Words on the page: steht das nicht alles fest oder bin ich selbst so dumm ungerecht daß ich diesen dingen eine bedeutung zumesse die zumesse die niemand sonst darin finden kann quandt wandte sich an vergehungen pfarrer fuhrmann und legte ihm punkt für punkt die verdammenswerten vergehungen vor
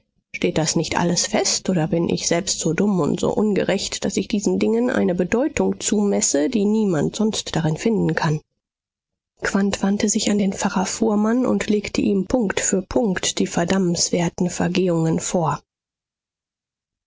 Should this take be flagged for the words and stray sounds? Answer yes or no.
yes